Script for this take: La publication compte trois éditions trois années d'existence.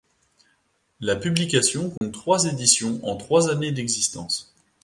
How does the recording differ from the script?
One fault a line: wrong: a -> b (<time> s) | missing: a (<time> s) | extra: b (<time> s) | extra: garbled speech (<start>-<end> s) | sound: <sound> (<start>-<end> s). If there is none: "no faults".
sound: dropout (2.0-2.0 s)
extra: en (3.0 s)